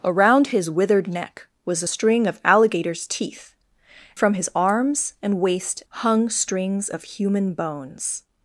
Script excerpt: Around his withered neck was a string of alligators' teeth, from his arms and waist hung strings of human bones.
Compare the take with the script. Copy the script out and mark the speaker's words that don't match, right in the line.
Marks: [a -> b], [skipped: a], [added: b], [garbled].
Around his withered neck was a string of alligators' teeth, from his arms and waist hung strings of human bones.